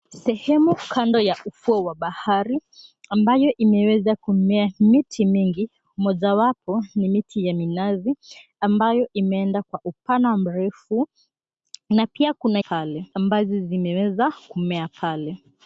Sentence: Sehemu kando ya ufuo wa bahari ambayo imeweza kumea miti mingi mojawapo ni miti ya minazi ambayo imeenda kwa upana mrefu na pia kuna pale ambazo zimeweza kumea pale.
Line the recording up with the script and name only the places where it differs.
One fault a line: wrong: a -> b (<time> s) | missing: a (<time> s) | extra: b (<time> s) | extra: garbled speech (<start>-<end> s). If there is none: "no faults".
no faults